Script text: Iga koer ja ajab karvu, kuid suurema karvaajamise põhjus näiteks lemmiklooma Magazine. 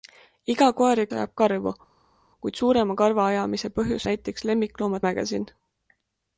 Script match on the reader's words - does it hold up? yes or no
yes